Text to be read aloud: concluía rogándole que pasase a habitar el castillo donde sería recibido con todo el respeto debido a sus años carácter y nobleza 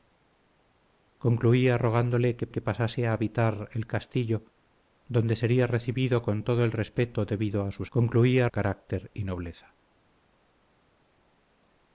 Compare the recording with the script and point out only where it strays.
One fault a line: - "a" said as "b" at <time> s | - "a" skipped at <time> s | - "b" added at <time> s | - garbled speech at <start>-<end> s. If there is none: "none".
- "que" added at 2.5 s
- "años" said as "concluía" at 8.0 s